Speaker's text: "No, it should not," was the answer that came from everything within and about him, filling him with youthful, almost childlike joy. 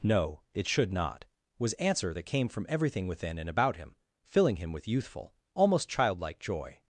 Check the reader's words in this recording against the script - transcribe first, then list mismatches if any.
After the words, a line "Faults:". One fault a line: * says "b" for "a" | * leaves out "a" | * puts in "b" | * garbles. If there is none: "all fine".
"No, it should not," was answer that came from everything within and about him, filling him with youthful, almost childlike joy.
Faults:
* leaves out "the"